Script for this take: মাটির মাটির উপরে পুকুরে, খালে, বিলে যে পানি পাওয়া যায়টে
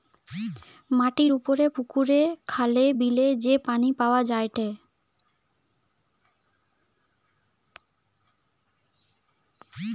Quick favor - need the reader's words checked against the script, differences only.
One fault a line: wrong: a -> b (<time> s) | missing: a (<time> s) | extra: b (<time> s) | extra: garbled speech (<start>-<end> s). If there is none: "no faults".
missing: মাটির (1.3 s)